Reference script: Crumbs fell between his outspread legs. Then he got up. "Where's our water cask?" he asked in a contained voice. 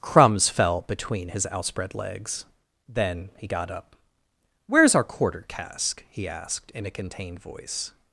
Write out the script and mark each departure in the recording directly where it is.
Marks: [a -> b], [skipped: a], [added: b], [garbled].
Crumbs fell between his outspread legs. Then he got up. "Where's our [water -> quarter] cask?" he asked in a contained voice.